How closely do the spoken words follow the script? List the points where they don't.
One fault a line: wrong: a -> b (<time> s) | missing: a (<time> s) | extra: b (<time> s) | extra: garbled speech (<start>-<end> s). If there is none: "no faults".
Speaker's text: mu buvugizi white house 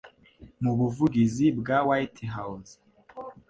extra: bwa (1.6 s)